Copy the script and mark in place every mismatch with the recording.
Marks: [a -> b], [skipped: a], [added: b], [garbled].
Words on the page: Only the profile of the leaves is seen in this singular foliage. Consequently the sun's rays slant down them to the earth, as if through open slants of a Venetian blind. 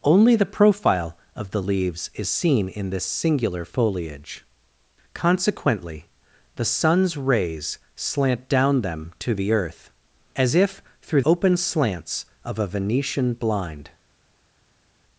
Only the profile of the leaves is seen in this singular foliage. Consequently the sun's rays slant down them to the earth, as if through open slants of a Venetian blind.